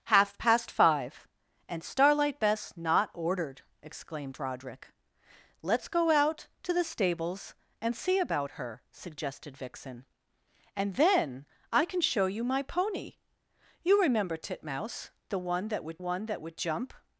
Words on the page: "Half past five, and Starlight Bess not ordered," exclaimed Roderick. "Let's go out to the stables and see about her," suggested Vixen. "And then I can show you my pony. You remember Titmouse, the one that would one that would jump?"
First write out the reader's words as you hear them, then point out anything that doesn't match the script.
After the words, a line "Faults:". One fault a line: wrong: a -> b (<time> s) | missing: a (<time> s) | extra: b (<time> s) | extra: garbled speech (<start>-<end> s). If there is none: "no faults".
"Half past five, and Starlight Bess not ordered," exclaimed Roderick. "Let's go out to the stables and see about her," suggested Vixen. "And then I can show you my pony. You remember Titmouse, the one that would one that would jump?"
Faults:
no faults